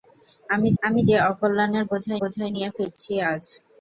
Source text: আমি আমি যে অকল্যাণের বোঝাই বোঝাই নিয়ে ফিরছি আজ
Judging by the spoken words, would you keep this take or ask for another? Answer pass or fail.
pass